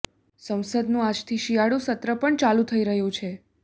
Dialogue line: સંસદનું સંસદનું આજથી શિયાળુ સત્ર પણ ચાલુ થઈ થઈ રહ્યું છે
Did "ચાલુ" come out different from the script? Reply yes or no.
no